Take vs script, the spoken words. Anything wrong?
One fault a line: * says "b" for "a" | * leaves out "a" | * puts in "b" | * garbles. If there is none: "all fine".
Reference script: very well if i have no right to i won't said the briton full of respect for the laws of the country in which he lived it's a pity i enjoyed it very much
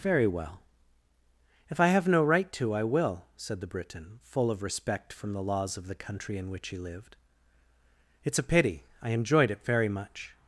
* says "will" for "won't"
* says "from" for "for"